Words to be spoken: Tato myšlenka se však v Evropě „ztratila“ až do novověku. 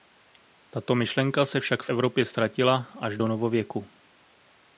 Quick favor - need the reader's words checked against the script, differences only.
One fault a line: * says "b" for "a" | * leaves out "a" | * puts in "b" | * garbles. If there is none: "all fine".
all fine